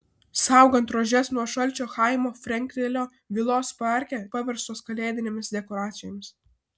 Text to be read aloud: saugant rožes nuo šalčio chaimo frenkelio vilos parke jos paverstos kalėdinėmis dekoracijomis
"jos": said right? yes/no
no